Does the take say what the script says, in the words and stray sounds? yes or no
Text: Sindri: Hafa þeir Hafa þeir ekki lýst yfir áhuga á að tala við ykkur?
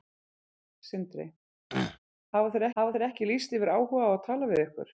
no